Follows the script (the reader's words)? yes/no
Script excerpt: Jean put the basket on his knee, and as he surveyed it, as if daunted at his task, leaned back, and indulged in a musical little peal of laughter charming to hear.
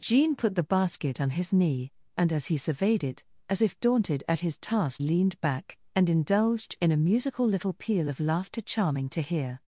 yes